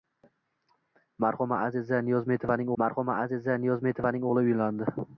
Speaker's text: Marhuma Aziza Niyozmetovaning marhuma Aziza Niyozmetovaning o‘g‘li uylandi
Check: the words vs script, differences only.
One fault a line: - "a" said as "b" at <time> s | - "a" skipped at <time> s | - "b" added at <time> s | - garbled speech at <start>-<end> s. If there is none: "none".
none